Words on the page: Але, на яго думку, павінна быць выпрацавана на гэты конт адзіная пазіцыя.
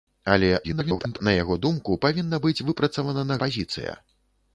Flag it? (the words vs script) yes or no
yes